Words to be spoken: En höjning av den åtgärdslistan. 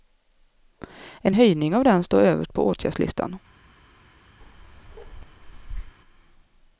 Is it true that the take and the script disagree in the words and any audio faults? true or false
true